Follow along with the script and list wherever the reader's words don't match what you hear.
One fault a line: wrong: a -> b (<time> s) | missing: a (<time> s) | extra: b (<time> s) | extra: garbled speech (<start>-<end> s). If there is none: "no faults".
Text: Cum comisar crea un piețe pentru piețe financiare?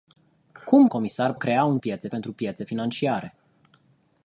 no faults